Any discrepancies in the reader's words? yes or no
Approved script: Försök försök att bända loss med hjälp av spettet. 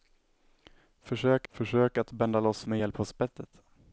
no